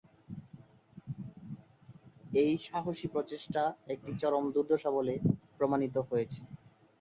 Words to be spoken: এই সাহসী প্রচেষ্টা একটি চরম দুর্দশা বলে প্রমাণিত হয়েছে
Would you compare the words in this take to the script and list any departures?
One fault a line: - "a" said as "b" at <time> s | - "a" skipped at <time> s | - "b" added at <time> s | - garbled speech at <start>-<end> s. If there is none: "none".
none